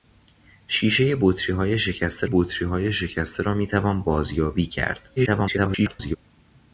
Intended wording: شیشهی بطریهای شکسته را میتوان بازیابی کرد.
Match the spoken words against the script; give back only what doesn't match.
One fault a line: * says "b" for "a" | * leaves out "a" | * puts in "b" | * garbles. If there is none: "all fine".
* puts in "بطریهای شکسته"
* garbles